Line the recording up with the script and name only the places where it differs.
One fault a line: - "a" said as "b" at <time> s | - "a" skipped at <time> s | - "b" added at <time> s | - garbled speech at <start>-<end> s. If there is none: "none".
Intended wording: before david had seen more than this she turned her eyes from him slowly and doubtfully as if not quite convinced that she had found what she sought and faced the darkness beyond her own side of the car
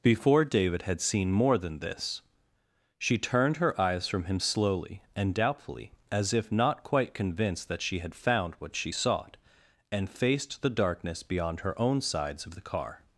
- "side" said as "sides" at 12.0 s